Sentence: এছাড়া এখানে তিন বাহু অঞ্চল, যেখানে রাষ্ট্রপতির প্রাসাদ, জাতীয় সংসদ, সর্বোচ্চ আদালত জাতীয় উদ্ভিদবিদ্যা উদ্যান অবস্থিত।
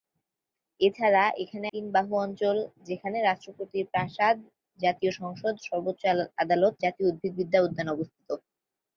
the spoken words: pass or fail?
pass